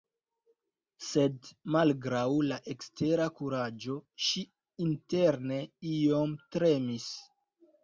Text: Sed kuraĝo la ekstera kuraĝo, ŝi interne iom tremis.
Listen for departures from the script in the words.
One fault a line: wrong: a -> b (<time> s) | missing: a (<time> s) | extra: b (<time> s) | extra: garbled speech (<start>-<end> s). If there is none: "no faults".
wrong: kuraĝo -> malgraŭ (1.8 s)